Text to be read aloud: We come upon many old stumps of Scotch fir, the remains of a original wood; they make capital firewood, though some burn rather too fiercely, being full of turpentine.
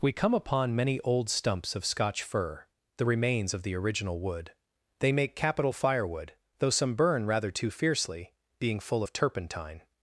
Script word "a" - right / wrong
wrong